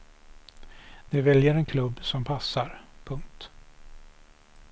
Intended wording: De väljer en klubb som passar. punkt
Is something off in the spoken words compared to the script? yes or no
no